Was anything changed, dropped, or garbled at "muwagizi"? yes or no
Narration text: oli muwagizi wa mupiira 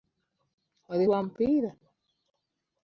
yes